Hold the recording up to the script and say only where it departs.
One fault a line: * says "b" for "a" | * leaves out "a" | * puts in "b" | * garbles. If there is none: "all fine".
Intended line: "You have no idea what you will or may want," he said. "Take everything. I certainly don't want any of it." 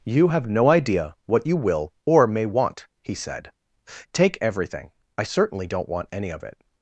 all fine